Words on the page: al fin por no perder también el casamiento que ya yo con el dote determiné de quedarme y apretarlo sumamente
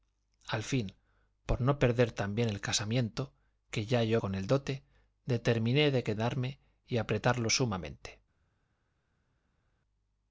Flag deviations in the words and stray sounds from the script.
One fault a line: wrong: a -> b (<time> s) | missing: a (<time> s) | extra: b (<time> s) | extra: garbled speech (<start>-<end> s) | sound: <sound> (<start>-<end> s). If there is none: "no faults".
no faults